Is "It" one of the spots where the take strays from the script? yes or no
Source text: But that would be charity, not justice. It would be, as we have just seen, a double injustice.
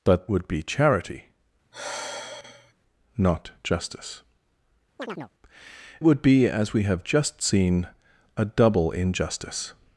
yes